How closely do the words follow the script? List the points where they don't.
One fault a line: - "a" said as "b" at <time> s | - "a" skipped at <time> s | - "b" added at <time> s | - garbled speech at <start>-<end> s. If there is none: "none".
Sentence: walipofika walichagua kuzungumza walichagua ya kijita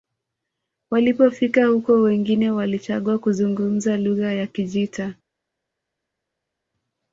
- "huko wengine" added at 1.6 s
- "walichagua" said as "lugha" at 4.0 s